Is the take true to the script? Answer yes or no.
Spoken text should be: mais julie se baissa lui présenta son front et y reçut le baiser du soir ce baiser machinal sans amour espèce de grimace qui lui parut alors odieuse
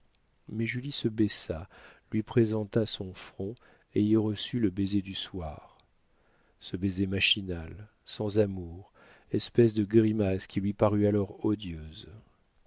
yes